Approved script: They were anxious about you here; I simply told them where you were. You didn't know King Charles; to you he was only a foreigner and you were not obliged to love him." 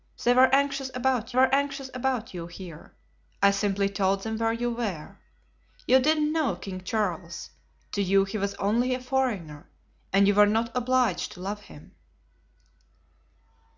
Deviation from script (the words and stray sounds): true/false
true